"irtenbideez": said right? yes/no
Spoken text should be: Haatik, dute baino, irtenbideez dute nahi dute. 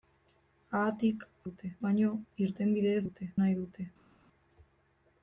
yes